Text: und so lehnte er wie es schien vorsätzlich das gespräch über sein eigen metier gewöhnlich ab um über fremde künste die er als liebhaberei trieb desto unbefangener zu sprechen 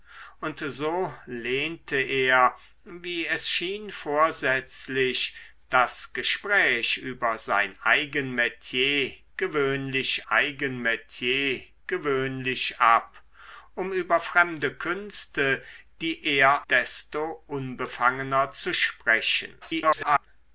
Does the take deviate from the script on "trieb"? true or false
true